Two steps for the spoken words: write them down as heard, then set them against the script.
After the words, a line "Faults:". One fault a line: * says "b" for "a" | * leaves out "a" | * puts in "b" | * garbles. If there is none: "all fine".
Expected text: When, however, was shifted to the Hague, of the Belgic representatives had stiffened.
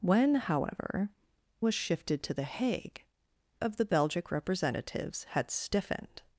When, however, was shifted to the Hague, of the Belgic representatives had stiffened.
Faults:
all fine